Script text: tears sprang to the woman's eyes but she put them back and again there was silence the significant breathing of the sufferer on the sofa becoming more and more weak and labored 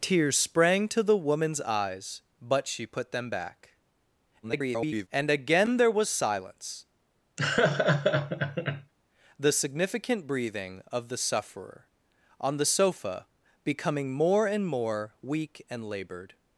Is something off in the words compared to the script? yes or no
yes